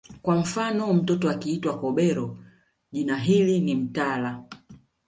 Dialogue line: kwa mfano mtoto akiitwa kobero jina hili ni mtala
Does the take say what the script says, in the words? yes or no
yes